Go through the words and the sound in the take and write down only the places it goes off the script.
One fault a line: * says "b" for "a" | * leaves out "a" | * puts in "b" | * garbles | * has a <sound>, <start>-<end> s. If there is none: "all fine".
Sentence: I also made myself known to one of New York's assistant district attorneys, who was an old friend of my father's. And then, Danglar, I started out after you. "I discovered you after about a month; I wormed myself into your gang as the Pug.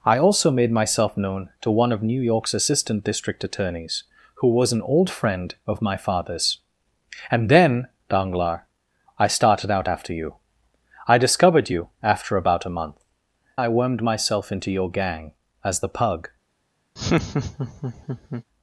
* has a laugh, 17.0-18.4 s